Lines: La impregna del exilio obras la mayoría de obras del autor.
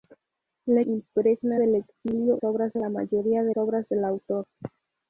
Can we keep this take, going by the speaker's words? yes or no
yes